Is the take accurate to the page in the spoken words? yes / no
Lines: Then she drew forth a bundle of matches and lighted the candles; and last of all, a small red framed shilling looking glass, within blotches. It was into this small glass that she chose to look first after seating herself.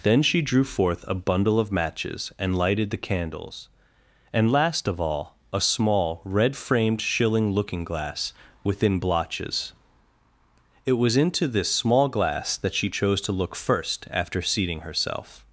yes